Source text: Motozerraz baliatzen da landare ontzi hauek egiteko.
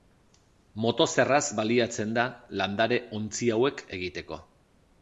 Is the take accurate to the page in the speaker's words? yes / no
yes